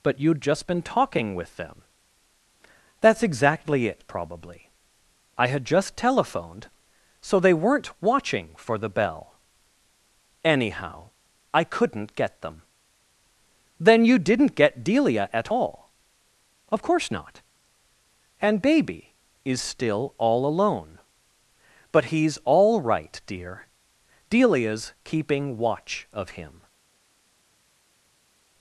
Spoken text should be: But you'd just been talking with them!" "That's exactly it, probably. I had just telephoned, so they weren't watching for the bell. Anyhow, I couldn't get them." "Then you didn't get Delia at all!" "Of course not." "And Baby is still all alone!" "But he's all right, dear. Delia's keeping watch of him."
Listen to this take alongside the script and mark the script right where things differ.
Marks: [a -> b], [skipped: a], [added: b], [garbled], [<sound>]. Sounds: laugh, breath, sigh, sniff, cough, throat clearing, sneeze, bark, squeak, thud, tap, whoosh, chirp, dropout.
But you'd just been talking with them!" "That's exactly it, probably. I had just telephoned, so they weren't watching for the bell. Anyhow, I couldn't get them." "Then you didn't get Delia at all!" "Of course not." "And Baby is still all alone!" "But he's all right, dear. Delia's keeping watch of him."